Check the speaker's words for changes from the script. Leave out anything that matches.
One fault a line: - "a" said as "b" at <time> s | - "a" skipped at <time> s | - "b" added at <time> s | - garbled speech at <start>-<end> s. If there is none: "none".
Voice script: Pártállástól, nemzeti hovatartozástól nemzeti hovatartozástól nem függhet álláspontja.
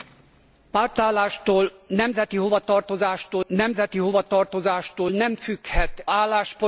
none